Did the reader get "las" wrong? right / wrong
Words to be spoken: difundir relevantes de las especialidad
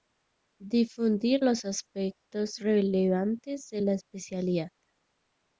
wrong